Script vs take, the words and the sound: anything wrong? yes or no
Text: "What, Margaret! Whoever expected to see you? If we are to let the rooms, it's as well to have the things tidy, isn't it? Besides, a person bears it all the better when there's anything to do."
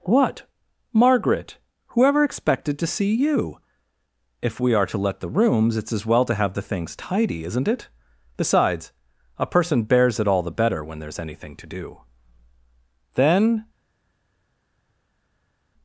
yes